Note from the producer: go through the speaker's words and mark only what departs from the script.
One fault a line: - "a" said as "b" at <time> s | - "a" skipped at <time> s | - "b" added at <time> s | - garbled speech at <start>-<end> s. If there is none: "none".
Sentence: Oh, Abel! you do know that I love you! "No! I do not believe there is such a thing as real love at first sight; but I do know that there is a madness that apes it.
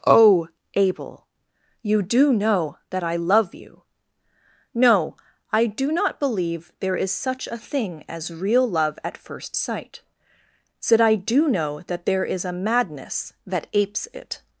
- "but" said as "said" at 10.8 s